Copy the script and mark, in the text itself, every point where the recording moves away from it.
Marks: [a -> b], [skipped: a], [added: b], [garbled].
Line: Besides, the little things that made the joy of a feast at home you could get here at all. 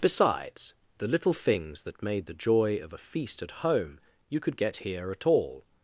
Besides, the little things that made the joy of a feast at home you could get here at all.